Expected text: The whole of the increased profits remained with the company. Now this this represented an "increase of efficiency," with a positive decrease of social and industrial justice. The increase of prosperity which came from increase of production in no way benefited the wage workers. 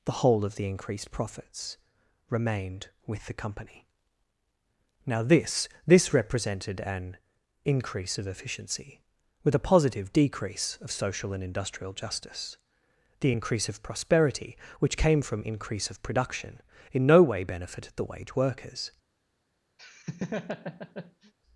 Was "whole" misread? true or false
false